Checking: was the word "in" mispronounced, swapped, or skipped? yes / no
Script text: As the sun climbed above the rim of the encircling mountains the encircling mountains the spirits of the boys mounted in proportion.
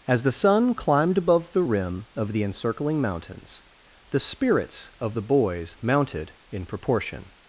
no